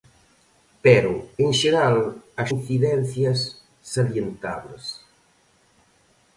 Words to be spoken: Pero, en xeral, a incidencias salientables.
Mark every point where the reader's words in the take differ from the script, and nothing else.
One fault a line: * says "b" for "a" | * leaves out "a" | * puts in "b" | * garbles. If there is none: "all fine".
all fine